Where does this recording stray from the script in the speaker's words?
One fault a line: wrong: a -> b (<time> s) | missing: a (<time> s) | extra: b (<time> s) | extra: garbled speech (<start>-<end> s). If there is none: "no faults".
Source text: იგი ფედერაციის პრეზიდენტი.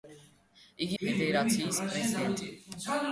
no faults